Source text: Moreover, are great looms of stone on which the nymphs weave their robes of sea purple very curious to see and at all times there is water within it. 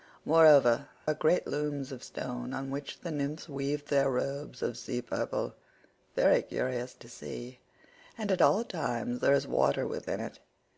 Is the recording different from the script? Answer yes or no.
no